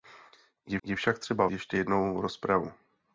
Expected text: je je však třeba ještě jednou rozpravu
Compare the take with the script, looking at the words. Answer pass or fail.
pass